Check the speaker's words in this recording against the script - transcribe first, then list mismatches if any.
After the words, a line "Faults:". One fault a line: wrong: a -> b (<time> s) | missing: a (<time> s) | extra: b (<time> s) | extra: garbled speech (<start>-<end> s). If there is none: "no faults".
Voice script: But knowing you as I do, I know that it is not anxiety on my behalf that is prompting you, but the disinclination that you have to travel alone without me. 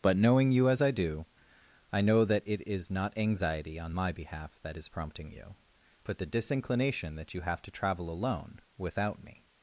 But knowing you as I do, I know that it is not anxiety on my behalf that is prompting you, but the disinclination that you have to travel alone without me.
Faults:
no faults